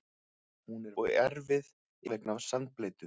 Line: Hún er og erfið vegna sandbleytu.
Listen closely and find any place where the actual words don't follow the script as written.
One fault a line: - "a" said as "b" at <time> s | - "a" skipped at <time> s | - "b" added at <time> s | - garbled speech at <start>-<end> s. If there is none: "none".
none